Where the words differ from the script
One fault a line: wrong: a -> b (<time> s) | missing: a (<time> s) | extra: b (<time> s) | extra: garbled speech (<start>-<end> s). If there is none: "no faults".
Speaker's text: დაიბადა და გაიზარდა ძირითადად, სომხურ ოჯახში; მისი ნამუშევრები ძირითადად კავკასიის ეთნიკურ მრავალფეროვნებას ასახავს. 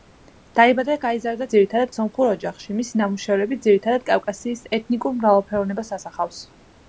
no faults